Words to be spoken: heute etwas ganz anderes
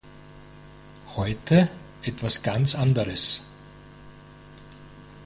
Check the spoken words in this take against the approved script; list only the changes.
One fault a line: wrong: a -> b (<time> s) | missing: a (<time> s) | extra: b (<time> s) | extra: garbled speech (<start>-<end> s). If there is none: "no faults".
no faults